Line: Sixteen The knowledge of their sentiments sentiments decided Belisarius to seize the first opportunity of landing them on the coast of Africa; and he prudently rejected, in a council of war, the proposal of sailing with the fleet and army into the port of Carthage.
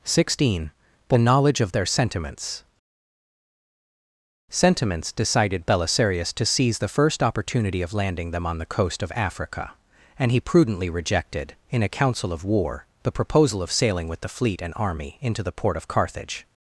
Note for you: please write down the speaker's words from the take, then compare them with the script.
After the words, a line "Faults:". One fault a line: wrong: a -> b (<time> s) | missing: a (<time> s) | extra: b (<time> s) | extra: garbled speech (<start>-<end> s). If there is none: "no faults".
Sixteen The knowledge of their sentiments sentiments decided Belisarius to seize the first opportunity of landing them on the coast of Africa; and he prudently rejected, in a council of war, the proposal of sailing with the fleet and army into the port of Carthage.
Faults:
no faults